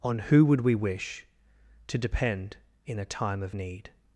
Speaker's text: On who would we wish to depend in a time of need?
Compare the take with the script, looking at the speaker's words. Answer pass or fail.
pass